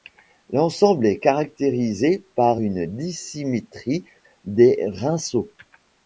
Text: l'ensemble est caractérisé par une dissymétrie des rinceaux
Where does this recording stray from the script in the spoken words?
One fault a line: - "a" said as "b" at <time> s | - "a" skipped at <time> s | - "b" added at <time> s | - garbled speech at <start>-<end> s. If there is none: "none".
none